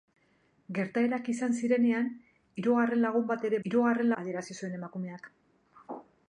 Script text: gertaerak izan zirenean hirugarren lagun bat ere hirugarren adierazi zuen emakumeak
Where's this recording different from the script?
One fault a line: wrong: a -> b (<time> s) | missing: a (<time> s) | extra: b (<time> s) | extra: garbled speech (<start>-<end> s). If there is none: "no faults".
no faults